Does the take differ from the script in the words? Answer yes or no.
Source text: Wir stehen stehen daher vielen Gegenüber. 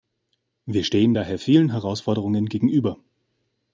yes